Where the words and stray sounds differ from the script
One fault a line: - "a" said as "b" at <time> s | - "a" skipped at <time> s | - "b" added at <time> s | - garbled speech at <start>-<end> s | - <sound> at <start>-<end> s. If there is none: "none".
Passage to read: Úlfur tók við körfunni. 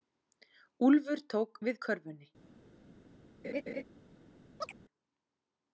- laugh at 3.4-3.8 s
- chirp at 4.6-4.8 s